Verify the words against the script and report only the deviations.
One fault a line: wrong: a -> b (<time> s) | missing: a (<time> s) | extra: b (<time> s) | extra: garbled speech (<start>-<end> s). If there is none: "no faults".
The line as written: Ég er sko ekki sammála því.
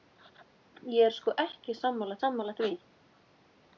extra: sammála (2.2 s)